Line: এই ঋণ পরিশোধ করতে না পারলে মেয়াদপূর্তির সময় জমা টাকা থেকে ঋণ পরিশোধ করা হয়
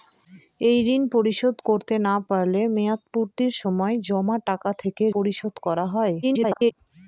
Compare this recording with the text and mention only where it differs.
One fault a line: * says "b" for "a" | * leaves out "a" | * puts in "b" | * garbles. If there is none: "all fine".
* leaves out "ঋণ"
* garbles